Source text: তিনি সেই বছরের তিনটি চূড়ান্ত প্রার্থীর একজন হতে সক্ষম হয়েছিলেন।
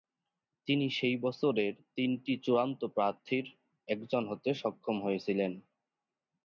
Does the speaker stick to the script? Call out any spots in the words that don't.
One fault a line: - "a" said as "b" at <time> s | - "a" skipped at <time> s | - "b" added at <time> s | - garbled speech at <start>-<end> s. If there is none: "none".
none